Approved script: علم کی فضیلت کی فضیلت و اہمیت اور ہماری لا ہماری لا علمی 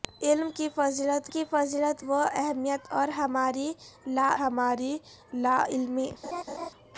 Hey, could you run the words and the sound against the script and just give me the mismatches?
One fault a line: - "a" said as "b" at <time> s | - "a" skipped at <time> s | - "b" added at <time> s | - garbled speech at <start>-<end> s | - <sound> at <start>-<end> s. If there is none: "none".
- laugh at 6.2-6.7 s